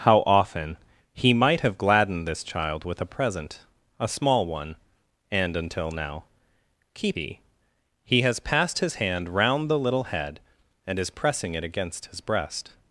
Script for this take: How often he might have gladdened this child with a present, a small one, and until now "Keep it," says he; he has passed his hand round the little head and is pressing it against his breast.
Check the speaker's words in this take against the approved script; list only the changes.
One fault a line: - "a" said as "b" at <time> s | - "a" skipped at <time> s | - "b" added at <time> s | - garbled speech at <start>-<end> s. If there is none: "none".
- "it says" skipped at 7.2 s